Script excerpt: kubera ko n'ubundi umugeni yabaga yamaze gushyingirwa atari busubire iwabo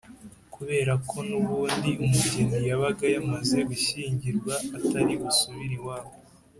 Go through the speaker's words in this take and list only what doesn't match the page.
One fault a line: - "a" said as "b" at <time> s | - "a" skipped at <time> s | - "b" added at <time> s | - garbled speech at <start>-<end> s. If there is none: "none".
none